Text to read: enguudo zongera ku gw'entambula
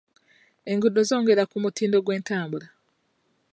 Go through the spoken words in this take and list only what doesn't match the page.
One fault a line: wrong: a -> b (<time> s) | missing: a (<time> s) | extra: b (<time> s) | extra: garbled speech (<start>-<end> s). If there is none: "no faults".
extra: mutindo (1.6 s)